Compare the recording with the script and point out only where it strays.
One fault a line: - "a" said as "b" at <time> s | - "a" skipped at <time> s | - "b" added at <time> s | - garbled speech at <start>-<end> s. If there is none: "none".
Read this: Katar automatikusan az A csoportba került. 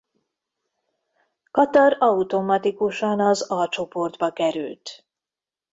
none